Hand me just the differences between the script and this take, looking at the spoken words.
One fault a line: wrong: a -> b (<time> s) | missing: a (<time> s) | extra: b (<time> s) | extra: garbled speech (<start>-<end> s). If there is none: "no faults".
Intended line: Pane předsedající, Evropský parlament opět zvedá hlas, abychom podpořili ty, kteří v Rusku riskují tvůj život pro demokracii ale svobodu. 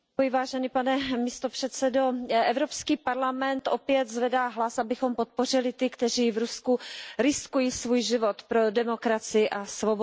wrong: tvůj -> svůj (7.7 s)
wrong: ale -> a (9.5 s)